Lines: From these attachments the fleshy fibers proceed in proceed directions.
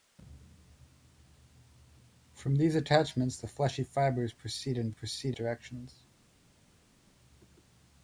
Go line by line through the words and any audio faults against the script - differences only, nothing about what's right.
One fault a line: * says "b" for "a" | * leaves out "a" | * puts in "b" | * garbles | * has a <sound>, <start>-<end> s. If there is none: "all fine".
all fine